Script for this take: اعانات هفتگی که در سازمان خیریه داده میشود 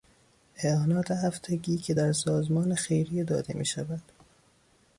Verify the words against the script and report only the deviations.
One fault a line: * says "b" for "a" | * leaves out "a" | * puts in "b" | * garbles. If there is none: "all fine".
all fine